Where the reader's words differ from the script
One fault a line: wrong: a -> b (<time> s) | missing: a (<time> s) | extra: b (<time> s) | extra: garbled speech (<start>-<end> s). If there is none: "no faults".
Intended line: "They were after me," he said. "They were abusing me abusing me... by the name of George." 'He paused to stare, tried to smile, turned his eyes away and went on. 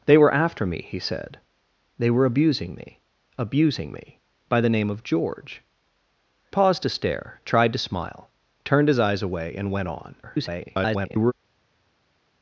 missing: He (5.6 s)
extra: garbled speech (10.2-11.3 s)